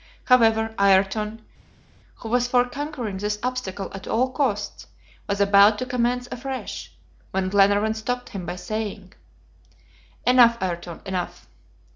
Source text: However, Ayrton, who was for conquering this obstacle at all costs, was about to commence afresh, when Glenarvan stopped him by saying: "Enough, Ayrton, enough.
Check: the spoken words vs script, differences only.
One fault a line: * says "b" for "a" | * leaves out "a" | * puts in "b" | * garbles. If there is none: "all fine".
all fine